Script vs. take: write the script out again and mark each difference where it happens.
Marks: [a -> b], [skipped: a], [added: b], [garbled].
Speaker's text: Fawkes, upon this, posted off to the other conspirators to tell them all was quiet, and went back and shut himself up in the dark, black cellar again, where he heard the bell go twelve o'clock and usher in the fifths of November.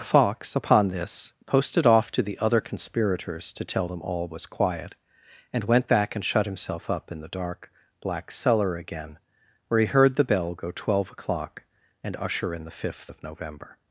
Fawkes, upon this, posted off to the other conspirators to tell them all was quiet, and went back and shut himself up in the dark, black cellar again, where he heard the bell go twelve o'clock and usher in the [fifths -> fifth] of November.